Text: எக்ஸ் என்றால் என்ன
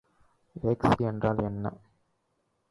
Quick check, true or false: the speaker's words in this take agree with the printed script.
true